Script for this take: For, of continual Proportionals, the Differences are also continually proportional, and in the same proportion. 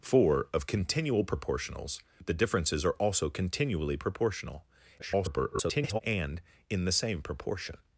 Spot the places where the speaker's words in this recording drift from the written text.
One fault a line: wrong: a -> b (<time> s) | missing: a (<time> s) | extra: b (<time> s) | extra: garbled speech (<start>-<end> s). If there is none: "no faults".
extra: garbled speech (5.0-6.0 s)